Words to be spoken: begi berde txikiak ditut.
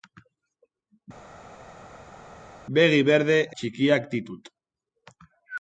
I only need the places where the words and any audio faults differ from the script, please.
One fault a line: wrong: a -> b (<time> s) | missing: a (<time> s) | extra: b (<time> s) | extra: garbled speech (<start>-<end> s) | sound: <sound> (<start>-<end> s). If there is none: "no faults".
no faults